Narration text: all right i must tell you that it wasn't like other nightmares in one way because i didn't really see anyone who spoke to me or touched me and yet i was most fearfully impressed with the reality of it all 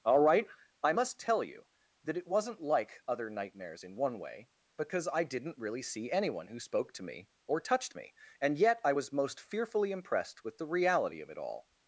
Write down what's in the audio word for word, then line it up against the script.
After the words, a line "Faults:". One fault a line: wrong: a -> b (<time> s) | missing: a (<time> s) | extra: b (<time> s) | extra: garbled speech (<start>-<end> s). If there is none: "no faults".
all right i must tell you that it wasn't like other nightmares in one way because i didn't really see anyone who spoke to me or touched me and yet i was most fearfully impressed with the reality of it all
Faults:
no faults